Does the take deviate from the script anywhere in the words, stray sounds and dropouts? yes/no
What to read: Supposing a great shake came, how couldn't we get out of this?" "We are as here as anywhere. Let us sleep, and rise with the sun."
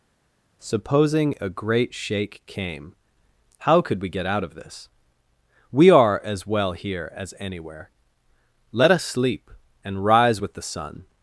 yes